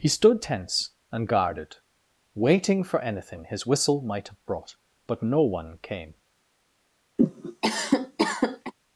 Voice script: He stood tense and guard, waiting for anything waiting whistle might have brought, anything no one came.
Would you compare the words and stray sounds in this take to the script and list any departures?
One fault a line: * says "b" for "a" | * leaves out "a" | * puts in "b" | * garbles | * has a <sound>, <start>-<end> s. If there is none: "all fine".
* says "guarded" for "guard"
* says "his" for "waiting"
* says "but" for "anything"
* has a cough, 7.2-8.7 s